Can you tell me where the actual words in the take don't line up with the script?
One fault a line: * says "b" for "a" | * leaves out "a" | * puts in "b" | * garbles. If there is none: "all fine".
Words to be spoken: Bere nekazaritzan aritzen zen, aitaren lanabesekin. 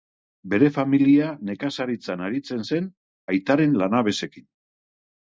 * puts in "familia"